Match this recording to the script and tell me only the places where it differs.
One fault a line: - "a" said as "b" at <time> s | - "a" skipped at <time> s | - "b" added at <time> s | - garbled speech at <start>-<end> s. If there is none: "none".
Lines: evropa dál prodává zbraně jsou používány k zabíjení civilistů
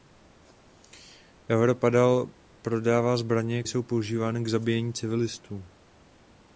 none